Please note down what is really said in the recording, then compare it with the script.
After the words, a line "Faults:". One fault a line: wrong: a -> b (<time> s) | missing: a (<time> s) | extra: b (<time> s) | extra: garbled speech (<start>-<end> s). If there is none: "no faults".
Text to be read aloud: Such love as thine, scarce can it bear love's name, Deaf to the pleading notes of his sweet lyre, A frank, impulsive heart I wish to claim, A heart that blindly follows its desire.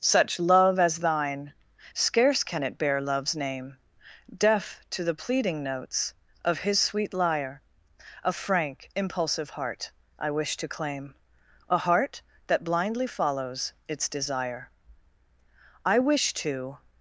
Such love as thine, scarce can it bear love's name, Deaf to the pleading notes of his sweet lyre, A frank, impulsive heart I wish to claim, A heart that blindly follows its desire. I wish to
Faults:
extra: I wish to (15.8 s)